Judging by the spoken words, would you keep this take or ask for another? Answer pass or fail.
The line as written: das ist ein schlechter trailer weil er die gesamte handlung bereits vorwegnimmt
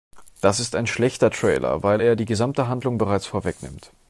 pass